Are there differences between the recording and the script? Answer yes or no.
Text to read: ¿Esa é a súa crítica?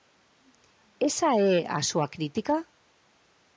no